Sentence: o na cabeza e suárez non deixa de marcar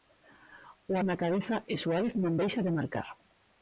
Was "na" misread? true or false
false